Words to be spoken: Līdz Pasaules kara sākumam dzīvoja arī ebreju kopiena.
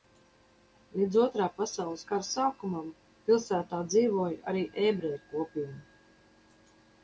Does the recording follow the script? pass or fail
fail